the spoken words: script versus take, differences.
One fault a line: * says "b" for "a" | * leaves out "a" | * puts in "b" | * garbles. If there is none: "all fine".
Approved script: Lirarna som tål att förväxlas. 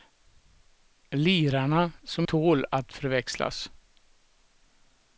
all fine